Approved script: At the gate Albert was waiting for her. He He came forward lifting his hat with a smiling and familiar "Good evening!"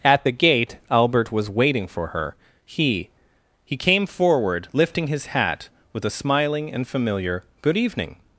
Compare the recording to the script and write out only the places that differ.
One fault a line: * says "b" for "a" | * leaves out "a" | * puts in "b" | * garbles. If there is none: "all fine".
all fine